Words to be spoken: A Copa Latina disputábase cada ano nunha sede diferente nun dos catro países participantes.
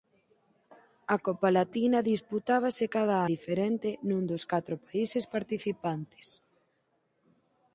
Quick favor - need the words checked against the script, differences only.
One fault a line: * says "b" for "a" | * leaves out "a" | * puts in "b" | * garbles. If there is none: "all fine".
* leaves out "ano nunha sede"